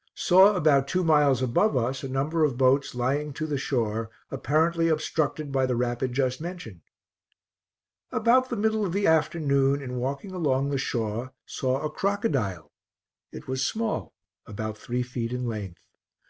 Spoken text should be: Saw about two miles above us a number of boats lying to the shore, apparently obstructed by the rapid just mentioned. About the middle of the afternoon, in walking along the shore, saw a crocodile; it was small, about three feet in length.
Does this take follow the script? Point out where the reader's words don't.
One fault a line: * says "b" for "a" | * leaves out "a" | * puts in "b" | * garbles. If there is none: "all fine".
all fine